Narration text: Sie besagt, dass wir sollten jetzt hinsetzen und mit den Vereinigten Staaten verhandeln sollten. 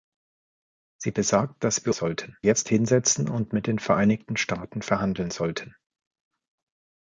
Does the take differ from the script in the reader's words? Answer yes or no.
no